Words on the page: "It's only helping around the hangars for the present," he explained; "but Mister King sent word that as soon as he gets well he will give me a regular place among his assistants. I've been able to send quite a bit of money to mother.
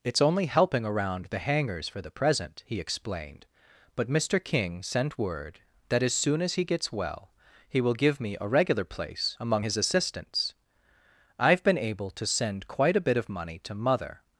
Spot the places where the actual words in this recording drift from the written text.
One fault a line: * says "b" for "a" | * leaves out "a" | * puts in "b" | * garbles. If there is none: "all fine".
all fine